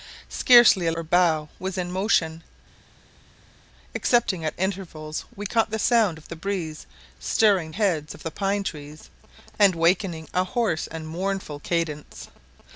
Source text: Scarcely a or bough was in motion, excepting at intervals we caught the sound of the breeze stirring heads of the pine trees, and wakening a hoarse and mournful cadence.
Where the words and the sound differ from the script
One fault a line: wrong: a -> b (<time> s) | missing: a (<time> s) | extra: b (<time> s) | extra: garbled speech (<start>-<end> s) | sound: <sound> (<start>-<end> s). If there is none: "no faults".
no faults